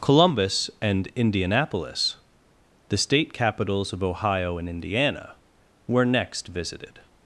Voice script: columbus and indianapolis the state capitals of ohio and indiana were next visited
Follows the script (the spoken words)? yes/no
yes